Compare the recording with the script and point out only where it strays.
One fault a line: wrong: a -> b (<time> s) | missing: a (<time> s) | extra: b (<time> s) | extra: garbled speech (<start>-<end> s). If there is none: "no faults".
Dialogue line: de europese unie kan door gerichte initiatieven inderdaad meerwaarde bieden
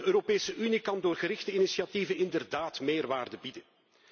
no faults